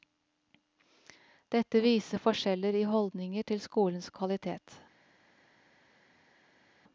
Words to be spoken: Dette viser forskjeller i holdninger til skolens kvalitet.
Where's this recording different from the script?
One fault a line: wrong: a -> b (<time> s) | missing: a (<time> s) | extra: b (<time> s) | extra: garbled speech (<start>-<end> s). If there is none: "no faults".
no faults